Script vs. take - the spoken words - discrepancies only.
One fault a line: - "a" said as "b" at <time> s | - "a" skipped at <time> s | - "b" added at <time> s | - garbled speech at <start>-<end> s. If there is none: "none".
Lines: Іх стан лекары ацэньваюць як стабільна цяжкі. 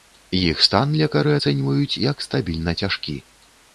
none